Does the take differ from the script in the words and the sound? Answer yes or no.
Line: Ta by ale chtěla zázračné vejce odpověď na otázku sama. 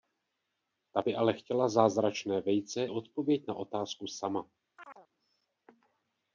yes